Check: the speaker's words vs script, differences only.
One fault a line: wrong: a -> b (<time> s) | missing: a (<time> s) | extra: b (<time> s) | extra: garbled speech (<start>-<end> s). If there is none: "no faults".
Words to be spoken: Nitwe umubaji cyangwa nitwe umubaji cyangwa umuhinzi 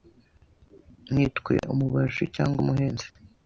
missing: nitwe umubaji cyangwa (2.6 s)